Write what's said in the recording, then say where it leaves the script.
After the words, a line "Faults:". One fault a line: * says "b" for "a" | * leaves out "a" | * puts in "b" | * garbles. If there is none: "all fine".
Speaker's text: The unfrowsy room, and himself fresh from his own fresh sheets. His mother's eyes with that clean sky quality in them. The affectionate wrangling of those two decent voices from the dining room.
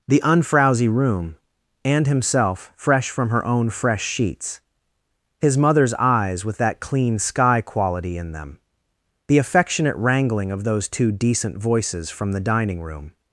The unfrowsy room, and himself fresh from her own fresh sheets. His mother's eyes with that clean sky quality in them. The affectionate wrangling of those two decent voices from the dining room.
Faults:
* says "her" for "his"